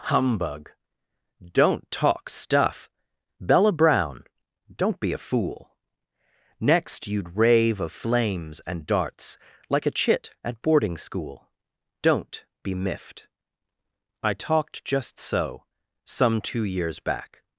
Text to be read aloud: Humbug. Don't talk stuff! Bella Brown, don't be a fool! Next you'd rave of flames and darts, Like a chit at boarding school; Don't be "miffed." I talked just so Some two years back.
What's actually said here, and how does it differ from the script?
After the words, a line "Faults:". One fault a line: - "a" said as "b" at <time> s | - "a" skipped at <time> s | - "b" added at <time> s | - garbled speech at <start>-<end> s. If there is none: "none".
Humbug. Don't talk stuff! Bella Brown, don't be a fool! Next you'd rave of flames and darts, Like a chit at boarding school; Don't be "miffed." I talked just so Some two years back.
Faults:
none